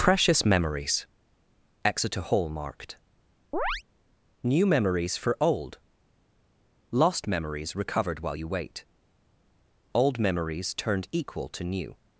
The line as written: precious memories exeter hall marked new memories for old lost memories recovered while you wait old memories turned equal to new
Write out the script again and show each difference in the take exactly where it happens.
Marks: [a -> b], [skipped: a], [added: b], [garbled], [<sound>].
precious memories exeter hall marked [chirp] new memories for old lost memories recovered while you wait old memories turned equal to new